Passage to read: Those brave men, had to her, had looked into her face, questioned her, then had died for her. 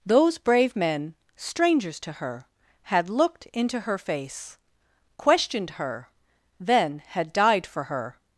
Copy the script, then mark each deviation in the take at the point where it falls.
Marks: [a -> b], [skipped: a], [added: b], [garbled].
Those brave men, [had -> strangers] to her, had looked into her face, questioned her, then had died for her.